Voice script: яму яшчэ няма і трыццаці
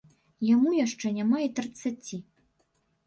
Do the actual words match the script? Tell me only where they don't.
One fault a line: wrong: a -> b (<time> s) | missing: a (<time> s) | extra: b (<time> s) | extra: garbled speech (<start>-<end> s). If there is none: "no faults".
no faults